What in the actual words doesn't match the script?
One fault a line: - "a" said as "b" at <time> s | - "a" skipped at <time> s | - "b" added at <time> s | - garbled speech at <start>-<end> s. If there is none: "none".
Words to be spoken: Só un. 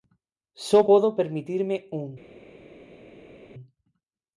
- "podo permitirme" added at 0.9 s